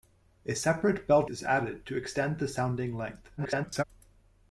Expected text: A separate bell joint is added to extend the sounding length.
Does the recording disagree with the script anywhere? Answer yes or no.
yes